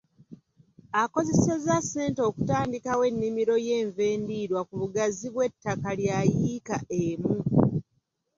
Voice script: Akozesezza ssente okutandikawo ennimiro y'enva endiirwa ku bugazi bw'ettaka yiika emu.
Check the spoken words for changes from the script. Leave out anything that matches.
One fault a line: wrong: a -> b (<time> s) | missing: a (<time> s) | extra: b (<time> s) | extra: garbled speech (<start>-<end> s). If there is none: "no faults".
extra: lya (6.0 s)